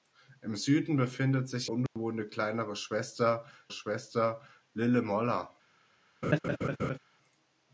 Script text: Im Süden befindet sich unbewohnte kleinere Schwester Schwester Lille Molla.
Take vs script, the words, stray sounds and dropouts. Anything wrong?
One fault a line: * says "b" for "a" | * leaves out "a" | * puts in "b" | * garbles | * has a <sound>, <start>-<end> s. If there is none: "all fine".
* has a dropout, 1.9-2.0 s
* has a laugh, 6.2-7.0 s